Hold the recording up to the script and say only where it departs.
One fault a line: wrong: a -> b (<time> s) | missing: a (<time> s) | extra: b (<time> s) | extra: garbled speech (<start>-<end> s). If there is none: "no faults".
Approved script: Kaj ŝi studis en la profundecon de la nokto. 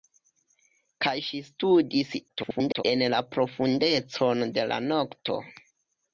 extra: garbled speech (2.3-2.8 s)